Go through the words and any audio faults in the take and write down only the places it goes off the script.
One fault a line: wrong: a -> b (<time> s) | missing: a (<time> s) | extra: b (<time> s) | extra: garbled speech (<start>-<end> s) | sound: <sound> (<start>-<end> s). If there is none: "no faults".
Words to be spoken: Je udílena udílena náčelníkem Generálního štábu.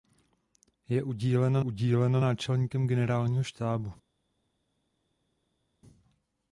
no faults